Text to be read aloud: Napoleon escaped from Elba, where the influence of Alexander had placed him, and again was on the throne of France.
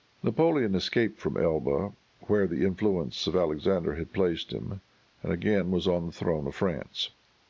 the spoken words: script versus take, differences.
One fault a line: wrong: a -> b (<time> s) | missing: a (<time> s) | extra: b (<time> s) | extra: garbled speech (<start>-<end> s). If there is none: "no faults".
no faults